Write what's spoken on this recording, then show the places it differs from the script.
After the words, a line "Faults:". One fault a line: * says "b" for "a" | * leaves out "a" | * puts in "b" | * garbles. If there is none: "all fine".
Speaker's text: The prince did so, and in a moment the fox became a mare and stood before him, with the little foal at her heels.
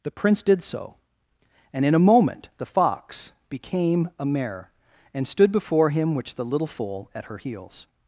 The prince did so, and in a moment the fox became a mare and stood before him, which the little foal at her heels.
Faults:
* says "which" for "with"